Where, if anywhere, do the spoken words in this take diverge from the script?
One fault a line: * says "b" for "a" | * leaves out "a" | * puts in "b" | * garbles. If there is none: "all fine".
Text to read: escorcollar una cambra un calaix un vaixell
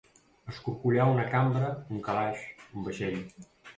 all fine